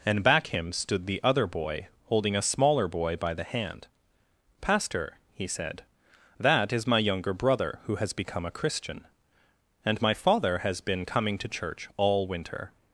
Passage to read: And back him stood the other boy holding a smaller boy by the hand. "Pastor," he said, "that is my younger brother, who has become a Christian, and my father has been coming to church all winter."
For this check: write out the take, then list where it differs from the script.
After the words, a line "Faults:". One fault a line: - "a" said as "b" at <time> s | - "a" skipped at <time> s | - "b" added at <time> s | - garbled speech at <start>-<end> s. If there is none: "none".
And back him stood the other boy holding a smaller boy by the hand. "Pastor," he said, "that is my younger brother, who has become a Christian, and my father has been coming to church all winter."
Faults:
none